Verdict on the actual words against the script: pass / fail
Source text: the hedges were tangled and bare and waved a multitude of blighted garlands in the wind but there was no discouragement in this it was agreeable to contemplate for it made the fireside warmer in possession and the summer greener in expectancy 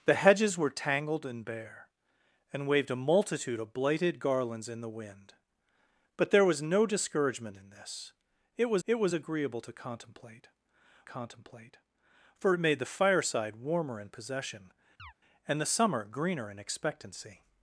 fail